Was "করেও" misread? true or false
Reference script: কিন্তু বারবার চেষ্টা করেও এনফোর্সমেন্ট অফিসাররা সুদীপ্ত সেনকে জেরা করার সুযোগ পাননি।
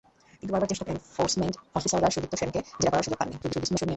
true